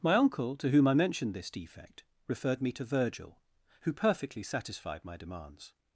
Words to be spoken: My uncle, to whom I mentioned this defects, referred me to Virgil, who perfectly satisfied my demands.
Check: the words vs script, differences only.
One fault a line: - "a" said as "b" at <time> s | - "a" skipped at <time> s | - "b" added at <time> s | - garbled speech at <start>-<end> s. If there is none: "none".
- "defects" said as "defect" at 1.5 s